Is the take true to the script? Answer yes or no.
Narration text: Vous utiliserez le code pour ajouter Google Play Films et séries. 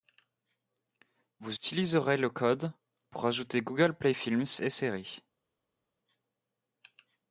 yes